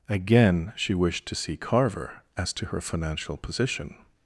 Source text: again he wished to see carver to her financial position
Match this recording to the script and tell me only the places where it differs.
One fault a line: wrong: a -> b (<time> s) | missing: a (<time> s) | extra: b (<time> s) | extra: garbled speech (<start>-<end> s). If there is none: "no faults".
wrong: he -> she (0.8 s)
extra: as (2.4 s)